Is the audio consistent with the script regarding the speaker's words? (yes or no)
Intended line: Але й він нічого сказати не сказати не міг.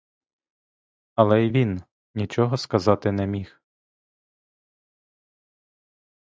no